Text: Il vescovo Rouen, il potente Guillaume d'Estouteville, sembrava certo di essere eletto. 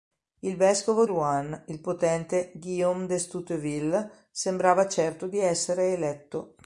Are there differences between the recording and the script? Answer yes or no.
no